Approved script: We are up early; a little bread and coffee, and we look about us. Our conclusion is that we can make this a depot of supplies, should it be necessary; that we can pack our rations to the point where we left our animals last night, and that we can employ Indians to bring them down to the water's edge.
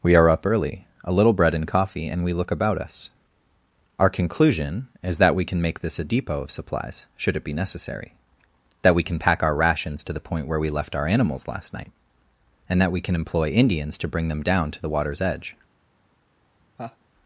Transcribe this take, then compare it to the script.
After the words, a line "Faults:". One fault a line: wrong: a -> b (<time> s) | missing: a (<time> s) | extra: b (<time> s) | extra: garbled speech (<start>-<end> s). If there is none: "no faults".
We are up early; a little bread and coffee, and we look about us. Our conclusion is that we can make this a depot of supplies, should it be necessary; that we can pack our rations to the point where we left our animals last night, and that we can employ Indians to bring them down to the water's edge.
Faults:
no faults